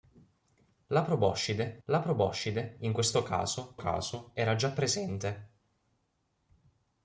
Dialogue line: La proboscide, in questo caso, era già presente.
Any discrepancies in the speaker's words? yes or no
yes